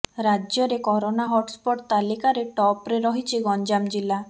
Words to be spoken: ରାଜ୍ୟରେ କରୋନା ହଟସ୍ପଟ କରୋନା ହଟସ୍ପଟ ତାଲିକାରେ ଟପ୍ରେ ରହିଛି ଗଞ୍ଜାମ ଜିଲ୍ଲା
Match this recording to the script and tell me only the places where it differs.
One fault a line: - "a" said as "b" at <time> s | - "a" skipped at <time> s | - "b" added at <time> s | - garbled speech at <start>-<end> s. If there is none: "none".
- "କରୋନା ହଟସ୍ପଟ" skipped at 1.8 s